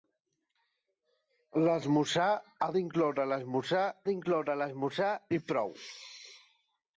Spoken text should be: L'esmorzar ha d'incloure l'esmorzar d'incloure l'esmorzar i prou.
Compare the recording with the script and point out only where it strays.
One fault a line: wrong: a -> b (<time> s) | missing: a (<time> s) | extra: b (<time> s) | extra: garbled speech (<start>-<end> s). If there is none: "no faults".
no faults